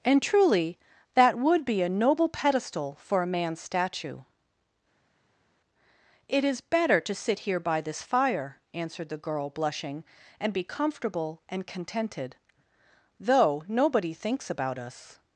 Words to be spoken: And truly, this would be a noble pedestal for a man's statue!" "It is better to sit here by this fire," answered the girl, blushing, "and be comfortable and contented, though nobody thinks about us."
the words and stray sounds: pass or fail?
fail